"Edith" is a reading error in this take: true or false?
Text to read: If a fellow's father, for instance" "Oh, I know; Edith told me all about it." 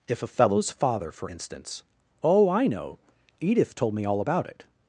false